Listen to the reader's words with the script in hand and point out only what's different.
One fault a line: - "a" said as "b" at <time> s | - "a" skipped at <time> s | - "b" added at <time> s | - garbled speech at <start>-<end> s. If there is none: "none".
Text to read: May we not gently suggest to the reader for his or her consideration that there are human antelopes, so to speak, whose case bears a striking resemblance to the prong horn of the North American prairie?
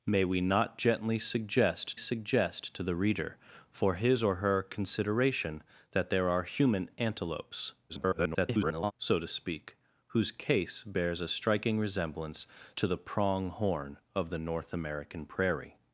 - "suggest" added at 2.0 s
- garbled speech at 7.9-8.9 s